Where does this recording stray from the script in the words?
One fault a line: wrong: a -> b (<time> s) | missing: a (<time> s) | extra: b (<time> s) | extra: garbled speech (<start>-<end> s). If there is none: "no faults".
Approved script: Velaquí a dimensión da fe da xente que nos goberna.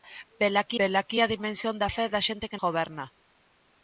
extra: velaquí (0.8 s)
missing: nos (2.6 s)